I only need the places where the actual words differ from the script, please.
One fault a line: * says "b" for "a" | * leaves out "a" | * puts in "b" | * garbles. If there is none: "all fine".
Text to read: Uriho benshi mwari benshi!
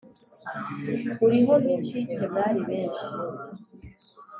* says "nk'incike" for "benshi"